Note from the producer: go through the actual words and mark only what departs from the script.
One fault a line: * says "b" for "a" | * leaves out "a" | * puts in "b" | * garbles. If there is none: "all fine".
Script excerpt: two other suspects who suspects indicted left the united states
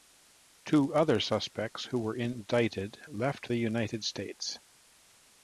* says "were" for "suspects"